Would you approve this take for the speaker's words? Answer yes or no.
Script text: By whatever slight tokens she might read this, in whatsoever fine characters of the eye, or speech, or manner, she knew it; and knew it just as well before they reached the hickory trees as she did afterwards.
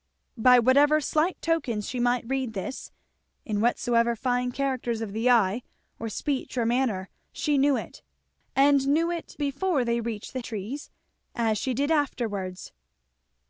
no